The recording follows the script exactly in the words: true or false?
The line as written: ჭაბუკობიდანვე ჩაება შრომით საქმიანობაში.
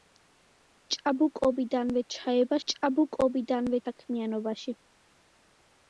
false